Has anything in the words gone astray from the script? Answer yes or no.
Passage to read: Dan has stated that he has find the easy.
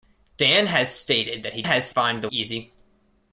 no